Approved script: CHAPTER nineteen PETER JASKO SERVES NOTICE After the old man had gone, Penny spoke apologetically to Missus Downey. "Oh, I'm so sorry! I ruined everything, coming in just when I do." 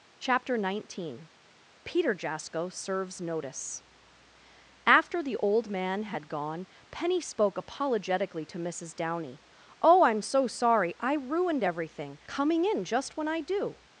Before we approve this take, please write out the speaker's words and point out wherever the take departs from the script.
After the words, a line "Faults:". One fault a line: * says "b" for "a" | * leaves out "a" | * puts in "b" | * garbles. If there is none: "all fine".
CHAPTER nineteen PETER JASKO SERVES NOTICE After the old man had gone, Penny spoke apologetically to Missus Downey. "Oh, I'm so sorry! I ruined everything, coming in just when I do."
Faults:
all fine